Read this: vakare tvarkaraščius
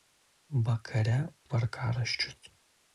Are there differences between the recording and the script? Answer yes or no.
no